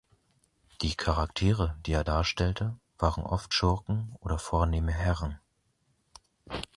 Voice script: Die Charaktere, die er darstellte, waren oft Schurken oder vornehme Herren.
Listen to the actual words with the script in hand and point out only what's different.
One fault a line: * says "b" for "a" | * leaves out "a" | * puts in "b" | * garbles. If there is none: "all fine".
all fine